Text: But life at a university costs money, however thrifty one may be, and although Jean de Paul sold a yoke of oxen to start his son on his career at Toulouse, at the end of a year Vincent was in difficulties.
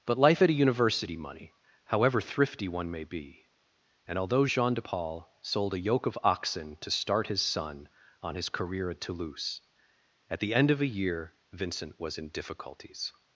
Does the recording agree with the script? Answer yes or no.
no